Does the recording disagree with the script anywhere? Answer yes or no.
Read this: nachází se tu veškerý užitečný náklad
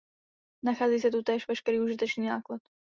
yes